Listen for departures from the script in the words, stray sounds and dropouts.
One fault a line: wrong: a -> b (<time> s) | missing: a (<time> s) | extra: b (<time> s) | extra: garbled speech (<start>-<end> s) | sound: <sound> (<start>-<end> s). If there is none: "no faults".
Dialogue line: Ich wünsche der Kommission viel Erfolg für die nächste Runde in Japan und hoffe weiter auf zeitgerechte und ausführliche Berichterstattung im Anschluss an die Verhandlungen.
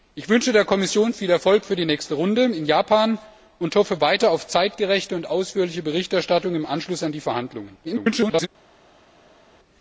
extra: garbled speech (7.8-8.5 s)